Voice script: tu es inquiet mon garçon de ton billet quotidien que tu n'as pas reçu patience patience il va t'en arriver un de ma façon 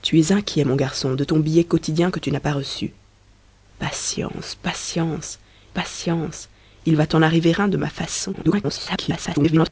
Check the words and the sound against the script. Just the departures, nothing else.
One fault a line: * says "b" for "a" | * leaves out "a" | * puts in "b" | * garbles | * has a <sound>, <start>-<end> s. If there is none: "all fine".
* puts in "patience"
* garbles